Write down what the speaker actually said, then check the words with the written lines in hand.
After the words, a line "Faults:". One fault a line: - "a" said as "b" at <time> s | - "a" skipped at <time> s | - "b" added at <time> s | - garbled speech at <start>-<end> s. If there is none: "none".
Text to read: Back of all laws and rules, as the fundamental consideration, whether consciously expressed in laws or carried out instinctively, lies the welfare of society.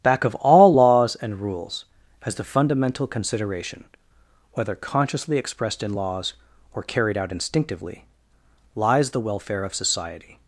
Back of all laws and rules, as the fundamental consideration, whether consciously expressed in laws or carried out instinctively, lies the welfare of society.
Faults:
none